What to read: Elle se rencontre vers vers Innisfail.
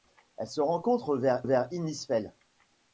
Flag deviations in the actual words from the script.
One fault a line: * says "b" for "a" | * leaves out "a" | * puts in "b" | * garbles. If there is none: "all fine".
all fine